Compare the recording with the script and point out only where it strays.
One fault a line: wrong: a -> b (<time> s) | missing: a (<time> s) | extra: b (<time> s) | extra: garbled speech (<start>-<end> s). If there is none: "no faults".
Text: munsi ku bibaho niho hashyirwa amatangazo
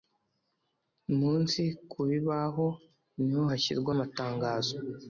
no faults